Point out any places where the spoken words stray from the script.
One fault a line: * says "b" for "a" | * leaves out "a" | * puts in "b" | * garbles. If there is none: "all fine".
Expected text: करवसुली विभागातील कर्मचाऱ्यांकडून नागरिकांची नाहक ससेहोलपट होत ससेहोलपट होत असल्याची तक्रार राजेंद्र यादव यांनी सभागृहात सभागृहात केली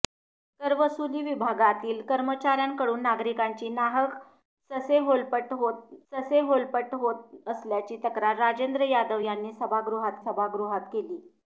all fine